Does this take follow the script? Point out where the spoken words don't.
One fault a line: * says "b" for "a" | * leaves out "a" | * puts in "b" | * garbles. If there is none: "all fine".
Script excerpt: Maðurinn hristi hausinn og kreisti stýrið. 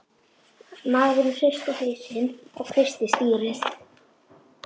all fine